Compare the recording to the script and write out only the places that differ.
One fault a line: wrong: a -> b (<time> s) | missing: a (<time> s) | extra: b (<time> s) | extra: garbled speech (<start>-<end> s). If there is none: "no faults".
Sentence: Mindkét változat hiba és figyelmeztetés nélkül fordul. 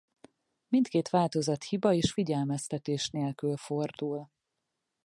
no faults